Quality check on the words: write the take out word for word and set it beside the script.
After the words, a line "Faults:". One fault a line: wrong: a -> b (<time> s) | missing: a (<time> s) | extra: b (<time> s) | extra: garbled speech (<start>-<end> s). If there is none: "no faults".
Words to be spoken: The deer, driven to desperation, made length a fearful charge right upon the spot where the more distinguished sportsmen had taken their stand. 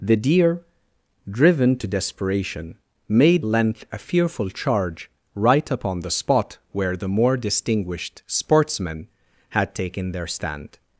The deer, driven to desperation, made length a fearful charge right upon the spot where the more distinguished sportsmen had taken their stand.
Faults:
no faults